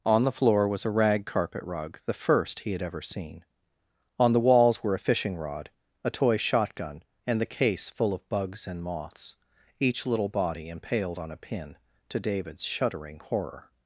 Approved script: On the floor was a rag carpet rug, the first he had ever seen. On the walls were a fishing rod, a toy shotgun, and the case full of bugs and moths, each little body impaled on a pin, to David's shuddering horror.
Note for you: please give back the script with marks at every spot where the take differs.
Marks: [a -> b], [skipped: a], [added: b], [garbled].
On the floor was a rag carpet rug, the first he had ever seen. On the walls were a fishing rod, a toy shotgun, and the case full of bugs and moths, each little body impaled on a pin, to David's shuddering horror.